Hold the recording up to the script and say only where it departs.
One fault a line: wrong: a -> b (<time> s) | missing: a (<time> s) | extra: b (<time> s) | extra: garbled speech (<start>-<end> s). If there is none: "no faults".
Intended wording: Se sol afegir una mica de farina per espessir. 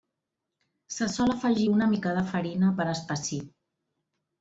no faults